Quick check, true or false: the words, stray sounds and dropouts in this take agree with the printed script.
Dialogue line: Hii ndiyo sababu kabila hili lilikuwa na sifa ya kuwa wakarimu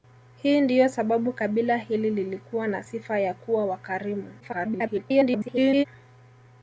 false